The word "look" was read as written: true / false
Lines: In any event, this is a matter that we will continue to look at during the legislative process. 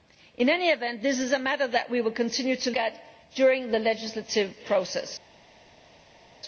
false